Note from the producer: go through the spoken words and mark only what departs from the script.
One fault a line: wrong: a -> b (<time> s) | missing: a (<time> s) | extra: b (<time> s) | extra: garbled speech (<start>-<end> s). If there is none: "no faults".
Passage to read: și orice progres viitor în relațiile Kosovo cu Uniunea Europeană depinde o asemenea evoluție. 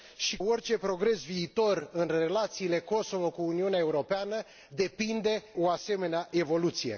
no faults